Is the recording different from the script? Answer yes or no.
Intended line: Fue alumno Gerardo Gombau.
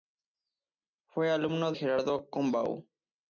no